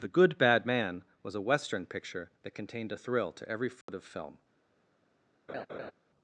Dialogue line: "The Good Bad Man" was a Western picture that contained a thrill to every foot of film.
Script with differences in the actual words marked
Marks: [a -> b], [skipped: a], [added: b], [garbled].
"The Good Bad Man" was a Western picture that contained a thrill to every foot of film.